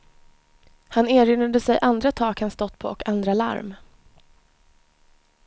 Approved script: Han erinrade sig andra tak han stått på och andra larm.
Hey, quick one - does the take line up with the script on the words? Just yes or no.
yes